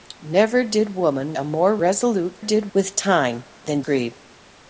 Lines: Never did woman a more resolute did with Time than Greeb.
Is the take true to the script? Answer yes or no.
yes